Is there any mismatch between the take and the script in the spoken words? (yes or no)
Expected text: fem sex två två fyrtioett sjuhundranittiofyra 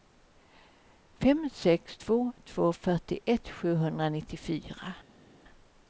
no